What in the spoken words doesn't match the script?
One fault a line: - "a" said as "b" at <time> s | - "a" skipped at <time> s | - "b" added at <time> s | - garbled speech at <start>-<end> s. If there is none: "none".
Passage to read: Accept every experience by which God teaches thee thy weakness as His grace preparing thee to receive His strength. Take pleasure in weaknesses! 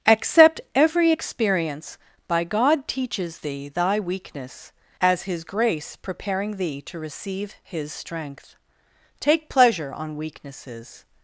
- "which" skipped at 2.4 s
- "in" said as "on" at 9.9 s